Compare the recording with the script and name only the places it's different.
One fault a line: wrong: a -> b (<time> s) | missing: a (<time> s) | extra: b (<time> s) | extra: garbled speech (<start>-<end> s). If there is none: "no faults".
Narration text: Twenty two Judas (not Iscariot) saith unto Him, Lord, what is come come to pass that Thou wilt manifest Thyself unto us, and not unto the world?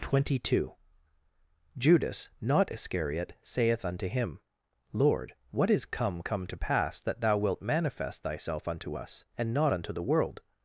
no faults